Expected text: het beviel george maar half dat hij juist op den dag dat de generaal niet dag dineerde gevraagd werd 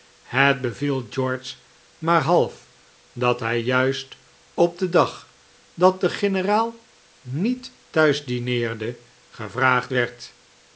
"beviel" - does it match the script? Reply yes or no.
yes